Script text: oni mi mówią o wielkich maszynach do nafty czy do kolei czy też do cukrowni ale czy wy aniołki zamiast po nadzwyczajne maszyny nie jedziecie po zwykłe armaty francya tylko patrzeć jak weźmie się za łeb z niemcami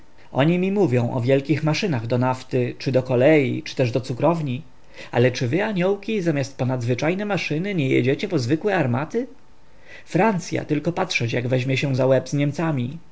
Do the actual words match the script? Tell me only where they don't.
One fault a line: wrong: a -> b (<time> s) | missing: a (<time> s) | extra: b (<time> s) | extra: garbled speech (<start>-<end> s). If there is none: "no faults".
no faults